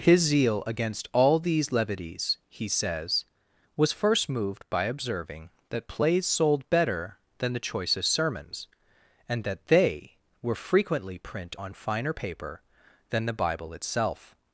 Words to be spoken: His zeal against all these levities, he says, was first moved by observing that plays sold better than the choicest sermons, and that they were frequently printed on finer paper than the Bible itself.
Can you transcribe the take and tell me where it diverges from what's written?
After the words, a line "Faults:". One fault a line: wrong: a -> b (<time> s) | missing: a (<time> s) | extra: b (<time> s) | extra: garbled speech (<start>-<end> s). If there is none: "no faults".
His zeal against all these levities, he says, was first moved by observing that plays sold better than the choicest sermons, and that they were frequently print on finer paper than the Bible itself.
Faults:
wrong: printed -> print (11.2 s)